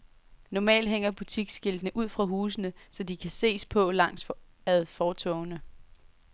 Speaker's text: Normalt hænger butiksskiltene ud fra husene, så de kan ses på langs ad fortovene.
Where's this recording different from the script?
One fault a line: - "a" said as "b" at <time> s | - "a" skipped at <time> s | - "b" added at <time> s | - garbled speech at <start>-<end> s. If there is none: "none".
none